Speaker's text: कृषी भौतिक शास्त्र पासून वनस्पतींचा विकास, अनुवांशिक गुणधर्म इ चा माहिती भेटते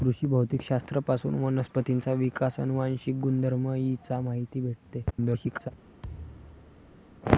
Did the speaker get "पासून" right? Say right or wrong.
right